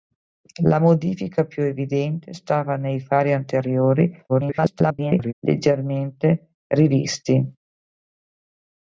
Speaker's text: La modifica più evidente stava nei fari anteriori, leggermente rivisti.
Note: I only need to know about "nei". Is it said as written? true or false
true